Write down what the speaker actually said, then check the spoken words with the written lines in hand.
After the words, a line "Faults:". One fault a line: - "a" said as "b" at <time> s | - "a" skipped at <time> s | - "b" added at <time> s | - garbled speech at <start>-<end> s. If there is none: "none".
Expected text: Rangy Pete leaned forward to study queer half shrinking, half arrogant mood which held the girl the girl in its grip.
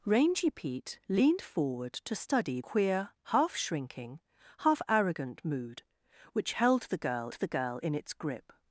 Rangy Pete leaned forward to study queer half shrinking, half arrogant mood which held the girl the girl in its grip.
Faults:
none